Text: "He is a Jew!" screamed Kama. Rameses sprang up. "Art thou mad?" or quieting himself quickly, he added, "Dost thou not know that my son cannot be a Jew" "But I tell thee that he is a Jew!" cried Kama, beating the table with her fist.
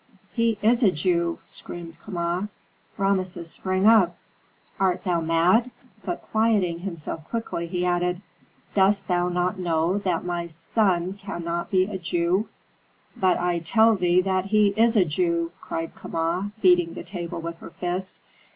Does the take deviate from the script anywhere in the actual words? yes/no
yes